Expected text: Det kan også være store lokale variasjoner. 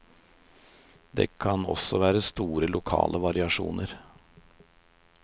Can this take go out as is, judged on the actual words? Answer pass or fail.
pass